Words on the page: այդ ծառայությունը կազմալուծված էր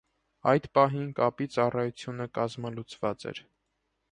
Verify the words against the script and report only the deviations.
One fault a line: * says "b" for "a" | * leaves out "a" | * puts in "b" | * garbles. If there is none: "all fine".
* puts in "պահին կապի"